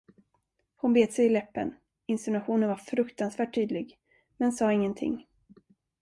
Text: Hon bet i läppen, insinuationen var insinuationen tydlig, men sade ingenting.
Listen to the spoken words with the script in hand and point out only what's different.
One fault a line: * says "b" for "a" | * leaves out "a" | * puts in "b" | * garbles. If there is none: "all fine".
* puts in "sig"
* says "fruktansvärt" for "insinuationen"